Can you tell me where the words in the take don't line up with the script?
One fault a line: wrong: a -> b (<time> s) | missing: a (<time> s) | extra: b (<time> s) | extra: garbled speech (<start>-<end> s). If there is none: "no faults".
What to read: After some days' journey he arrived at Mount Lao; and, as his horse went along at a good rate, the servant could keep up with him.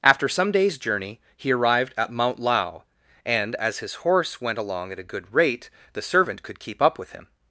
no faults